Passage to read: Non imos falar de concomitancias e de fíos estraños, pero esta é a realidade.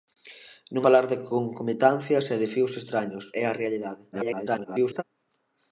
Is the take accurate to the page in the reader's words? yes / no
no